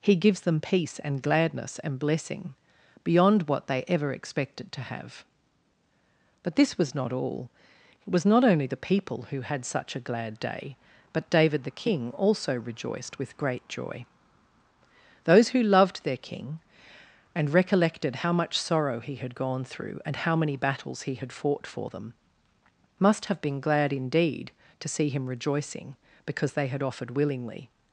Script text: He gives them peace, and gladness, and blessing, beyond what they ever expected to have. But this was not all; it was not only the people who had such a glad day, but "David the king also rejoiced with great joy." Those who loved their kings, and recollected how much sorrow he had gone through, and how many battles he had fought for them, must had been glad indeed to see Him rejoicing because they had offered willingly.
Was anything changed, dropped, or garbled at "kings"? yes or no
yes